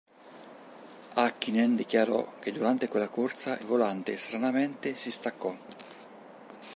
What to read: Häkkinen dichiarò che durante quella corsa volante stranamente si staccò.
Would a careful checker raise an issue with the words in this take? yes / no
no